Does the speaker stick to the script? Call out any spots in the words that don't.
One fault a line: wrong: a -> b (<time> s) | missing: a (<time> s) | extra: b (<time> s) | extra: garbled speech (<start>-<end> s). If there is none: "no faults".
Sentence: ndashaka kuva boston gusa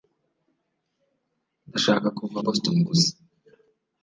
no faults